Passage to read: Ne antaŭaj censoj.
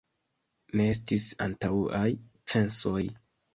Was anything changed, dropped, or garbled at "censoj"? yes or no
no